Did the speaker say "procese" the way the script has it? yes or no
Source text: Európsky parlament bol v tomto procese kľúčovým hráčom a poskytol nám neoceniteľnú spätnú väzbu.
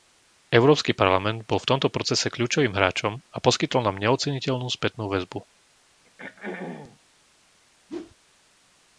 yes